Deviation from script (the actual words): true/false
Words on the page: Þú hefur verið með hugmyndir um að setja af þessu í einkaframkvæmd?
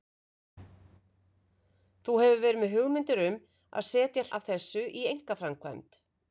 false